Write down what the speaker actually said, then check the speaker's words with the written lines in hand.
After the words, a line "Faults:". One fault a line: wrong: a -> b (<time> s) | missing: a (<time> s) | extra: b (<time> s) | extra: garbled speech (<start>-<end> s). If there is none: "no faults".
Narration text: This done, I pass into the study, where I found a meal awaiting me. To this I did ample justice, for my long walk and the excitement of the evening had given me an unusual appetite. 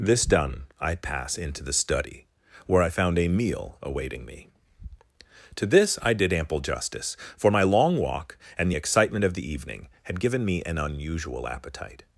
This done, I pass into the study, where I found a meal awaiting me. To this I did ample justice, for my long walk and the excitement of the evening had given me an unusual appetite.
Faults:
no faults